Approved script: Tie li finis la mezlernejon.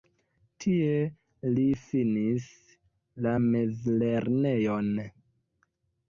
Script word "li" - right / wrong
right